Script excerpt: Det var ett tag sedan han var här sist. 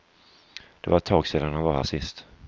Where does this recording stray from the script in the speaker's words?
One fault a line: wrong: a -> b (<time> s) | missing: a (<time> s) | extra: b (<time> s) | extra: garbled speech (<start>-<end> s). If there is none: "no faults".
no faults